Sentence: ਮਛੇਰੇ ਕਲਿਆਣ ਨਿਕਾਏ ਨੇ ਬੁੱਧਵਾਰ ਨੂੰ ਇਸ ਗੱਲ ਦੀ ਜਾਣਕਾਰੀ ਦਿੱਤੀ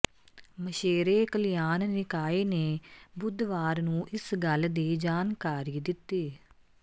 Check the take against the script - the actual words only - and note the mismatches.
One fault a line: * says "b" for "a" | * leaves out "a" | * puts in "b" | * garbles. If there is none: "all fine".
all fine